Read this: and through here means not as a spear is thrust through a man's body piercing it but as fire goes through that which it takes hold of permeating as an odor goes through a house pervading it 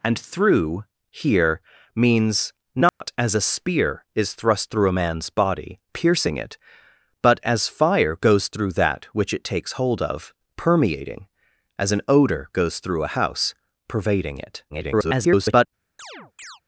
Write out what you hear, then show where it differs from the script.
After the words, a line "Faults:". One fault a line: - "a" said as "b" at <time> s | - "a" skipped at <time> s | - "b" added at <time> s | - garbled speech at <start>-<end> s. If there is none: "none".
and through here means not as a spear is thrust through a man's body piercing it but as fire goes through that which it takes hold of permeating as an odor goes through a house pervading it [garbled]
Faults:
- garbled speech at 14.7-15.7 s